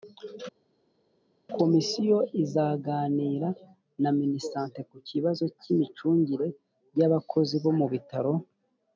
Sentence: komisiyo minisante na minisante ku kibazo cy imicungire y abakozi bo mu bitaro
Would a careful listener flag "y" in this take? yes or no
no